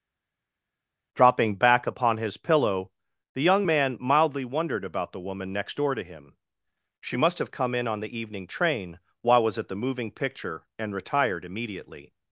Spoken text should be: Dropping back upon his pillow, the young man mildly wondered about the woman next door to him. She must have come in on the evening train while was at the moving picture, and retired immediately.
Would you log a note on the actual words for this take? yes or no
no